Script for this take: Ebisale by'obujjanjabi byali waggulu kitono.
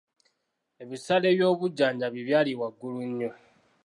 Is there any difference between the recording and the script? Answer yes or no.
yes